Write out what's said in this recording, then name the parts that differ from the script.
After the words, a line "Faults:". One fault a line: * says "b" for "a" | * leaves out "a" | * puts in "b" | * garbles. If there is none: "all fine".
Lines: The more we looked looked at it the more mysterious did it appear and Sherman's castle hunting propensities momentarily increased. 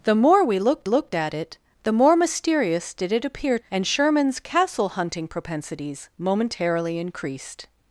The more we looked looked at it the more mysterious did it appear and Sherman's castle hunting propensities momentarily increased.
Faults:
all fine